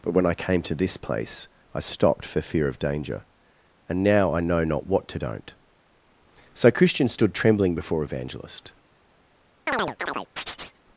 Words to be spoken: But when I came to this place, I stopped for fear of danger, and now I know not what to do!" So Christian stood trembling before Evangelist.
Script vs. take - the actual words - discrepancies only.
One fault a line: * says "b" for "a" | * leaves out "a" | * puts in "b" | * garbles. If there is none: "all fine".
* says "don't" for "do"